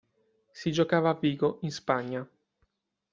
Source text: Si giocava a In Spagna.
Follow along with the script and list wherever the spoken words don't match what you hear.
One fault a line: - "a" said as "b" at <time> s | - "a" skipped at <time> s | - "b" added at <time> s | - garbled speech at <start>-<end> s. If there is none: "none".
- "Vigo" added at 1.1 s